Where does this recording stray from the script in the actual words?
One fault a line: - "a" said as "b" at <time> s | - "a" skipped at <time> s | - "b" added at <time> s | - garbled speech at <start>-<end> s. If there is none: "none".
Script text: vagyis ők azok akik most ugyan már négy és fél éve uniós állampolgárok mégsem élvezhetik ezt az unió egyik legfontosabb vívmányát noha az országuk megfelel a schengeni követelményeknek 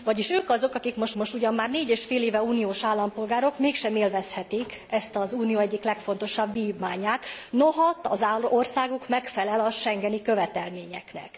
- "most" added at 1.1 s